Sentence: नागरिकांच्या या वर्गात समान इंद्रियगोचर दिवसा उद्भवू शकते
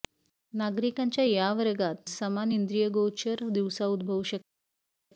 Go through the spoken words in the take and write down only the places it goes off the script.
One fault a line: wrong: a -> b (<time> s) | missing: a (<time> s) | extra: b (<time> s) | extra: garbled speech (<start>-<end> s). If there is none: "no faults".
no faults